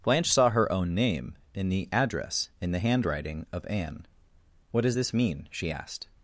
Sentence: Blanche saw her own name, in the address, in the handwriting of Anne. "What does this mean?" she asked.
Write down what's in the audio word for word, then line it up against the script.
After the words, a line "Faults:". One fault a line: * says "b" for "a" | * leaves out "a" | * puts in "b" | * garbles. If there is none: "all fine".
Blanche saw her own name, in the address, in the handwriting of Anne. "What does this mean?" she asked.
Faults:
all fine